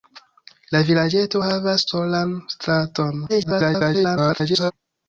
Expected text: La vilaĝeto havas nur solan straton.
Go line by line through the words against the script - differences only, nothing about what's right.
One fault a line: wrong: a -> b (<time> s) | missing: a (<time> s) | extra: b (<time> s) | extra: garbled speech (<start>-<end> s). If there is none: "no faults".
missing: nur (1.9 s)
extra: garbled speech (3.3-4.7 s)